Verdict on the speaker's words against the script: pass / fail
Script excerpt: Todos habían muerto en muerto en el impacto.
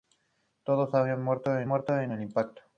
pass